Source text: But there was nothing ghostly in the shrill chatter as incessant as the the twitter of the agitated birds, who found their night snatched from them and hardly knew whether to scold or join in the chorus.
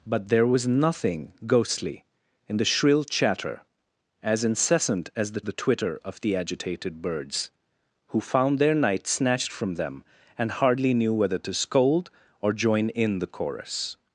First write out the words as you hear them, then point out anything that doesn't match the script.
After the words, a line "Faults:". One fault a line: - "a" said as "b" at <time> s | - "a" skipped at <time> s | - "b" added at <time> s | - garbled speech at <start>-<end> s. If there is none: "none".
But there was nothing ghostly in the shrill chatter as incessant as the the twitter of the agitated birds, who found their night snatched from them and hardly knew whether to scold or join in the chorus.
Faults:
none